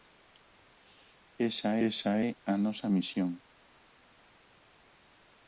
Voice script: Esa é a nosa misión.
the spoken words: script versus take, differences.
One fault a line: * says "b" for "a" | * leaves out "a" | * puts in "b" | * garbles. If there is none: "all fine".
* puts in "esa"